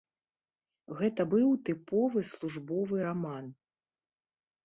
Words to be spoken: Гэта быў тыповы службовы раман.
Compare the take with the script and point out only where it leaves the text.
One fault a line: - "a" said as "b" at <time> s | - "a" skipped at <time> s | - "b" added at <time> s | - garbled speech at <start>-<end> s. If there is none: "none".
none